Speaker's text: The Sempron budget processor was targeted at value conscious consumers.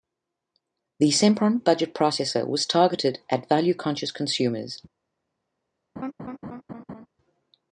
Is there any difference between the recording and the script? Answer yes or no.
no